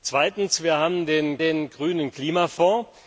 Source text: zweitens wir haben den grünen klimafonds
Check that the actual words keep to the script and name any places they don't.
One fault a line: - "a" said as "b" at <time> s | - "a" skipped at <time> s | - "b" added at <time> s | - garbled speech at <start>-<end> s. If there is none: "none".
- "den" added at 1.4 s